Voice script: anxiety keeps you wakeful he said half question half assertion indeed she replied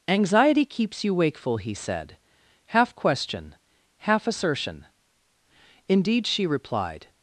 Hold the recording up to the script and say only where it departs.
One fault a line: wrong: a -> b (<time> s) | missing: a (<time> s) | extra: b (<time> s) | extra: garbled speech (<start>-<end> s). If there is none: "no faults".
no faults